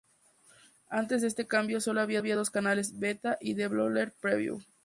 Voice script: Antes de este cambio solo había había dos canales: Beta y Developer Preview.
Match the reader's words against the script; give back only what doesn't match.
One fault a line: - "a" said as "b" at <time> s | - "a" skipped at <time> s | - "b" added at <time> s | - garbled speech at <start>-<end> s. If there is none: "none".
none